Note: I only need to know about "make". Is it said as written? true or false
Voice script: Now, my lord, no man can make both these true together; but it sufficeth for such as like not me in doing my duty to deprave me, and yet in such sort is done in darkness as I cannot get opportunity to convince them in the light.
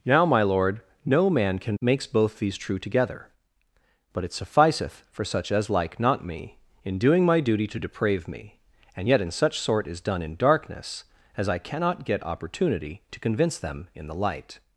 false